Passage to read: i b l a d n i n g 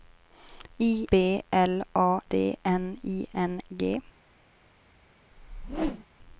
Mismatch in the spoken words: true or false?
false